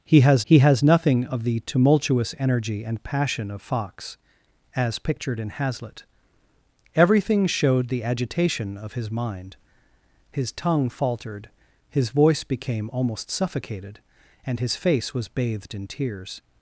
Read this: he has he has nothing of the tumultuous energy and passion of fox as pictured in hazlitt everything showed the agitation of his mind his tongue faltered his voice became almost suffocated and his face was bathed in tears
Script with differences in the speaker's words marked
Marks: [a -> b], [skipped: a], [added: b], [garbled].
he has he has nothing of the tumultuous energy and passion of fox as pictured in hazlitt everything showed the agitation of his mind his tongue faltered his voice became almost suffocated and his face was bathed in tears